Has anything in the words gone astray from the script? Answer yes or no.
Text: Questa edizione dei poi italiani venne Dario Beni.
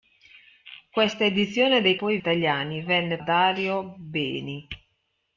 no